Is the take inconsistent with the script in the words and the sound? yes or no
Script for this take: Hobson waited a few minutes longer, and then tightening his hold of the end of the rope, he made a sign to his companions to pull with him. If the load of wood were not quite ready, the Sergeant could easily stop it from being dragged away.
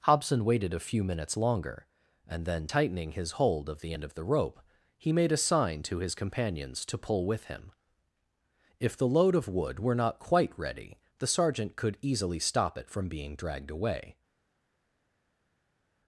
no